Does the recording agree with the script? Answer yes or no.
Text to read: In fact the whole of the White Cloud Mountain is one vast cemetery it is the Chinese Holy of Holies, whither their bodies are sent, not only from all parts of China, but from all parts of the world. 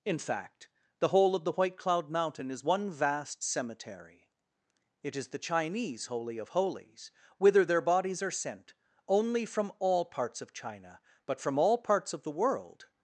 no